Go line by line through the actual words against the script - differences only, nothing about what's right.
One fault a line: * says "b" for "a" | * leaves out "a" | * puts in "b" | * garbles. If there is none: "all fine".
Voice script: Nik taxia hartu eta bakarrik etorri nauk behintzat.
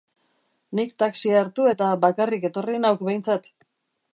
all fine